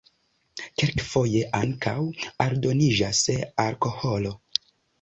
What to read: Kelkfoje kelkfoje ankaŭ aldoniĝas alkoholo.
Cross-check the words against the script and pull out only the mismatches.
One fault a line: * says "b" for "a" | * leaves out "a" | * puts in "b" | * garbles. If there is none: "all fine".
* leaves out "kelkfoje"